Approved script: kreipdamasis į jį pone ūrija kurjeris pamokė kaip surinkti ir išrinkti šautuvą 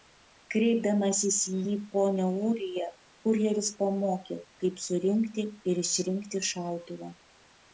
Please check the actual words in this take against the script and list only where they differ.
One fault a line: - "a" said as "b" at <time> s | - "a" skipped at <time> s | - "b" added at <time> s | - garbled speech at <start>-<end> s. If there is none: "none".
none